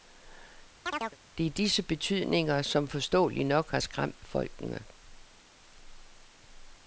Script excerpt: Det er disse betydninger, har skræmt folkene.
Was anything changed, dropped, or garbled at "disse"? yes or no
no